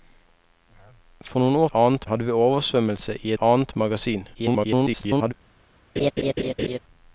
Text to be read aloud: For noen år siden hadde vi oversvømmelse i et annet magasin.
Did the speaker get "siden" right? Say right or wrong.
wrong